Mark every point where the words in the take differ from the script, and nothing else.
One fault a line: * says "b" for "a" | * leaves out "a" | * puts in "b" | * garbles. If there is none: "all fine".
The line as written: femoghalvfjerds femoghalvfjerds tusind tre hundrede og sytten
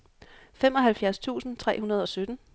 * leaves out "femoghalvfjerds"